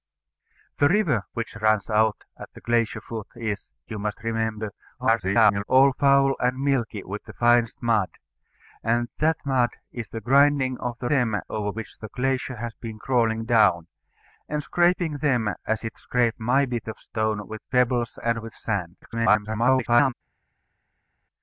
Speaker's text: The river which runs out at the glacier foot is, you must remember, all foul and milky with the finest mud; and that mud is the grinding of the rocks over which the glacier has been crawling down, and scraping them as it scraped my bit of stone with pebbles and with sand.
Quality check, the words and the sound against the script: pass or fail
fail